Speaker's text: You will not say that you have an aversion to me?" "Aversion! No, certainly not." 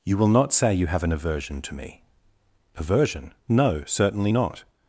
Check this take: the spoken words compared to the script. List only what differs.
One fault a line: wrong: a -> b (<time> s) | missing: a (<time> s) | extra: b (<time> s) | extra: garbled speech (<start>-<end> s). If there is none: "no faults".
missing: that (0.7 s)